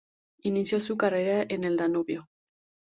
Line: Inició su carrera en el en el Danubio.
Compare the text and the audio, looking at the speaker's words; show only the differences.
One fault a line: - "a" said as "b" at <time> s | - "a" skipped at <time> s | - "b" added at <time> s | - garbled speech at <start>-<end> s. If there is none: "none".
- "en el" skipped at 1.8 s